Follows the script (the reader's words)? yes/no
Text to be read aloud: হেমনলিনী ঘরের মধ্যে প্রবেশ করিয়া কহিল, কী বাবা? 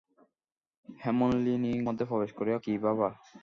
no